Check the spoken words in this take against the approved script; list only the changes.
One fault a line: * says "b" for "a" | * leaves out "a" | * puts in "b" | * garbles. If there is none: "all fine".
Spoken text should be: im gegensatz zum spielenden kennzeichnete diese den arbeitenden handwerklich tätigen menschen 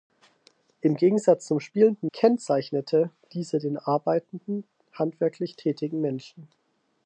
all fine